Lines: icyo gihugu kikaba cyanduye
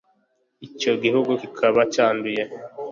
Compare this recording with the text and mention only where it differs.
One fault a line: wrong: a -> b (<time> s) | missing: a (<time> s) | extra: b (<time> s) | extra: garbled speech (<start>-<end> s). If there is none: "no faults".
no faults